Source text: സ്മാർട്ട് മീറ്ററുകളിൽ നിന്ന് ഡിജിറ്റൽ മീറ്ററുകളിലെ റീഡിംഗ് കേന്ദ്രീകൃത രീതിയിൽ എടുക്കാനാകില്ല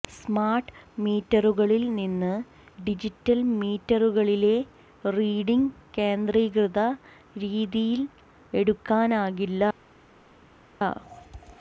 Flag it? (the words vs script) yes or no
no